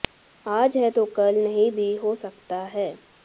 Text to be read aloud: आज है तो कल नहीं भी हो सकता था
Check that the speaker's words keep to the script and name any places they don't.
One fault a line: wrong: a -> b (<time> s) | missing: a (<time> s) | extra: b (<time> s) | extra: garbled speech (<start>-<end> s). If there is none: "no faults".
wrong: था -> है (2.6 s)